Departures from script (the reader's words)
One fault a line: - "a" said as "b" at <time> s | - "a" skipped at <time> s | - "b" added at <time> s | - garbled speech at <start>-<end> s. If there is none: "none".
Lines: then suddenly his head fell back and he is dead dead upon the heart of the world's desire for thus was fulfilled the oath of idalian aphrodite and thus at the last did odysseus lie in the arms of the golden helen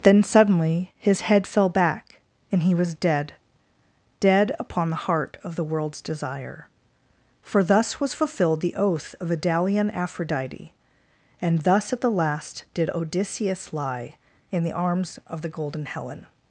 - "is" said as "was" at 2.7 s